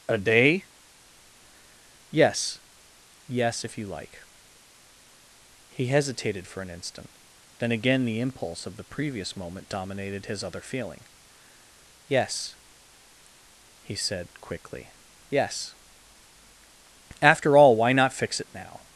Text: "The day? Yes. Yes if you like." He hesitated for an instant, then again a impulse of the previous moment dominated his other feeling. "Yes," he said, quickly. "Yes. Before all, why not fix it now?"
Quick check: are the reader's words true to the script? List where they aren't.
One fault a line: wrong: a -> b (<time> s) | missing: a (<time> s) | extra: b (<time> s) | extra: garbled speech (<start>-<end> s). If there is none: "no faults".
wrong: The -> A (0.1 s)
wrong: a -> the (8.0 s)
wrong: Before -> After (17.2 s)